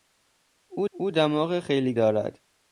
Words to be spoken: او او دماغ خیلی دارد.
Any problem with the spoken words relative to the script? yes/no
no